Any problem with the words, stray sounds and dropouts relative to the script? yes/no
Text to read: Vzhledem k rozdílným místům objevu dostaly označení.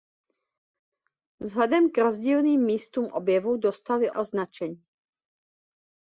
no